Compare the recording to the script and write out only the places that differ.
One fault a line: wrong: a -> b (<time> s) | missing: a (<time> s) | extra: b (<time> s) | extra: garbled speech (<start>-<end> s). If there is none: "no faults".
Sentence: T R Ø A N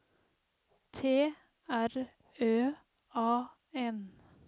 no faults